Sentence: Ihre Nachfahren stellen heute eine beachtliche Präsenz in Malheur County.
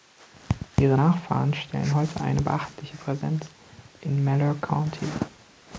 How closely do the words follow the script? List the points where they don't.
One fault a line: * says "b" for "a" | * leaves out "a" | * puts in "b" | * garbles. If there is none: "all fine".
all fine